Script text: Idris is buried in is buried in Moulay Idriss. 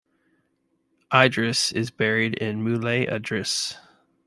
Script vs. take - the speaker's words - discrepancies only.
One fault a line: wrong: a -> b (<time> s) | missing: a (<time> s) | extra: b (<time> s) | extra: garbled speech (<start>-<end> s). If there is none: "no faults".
missing: is buried in (2.6 s)